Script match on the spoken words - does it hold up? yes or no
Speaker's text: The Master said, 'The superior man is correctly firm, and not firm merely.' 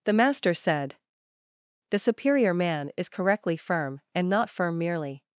yes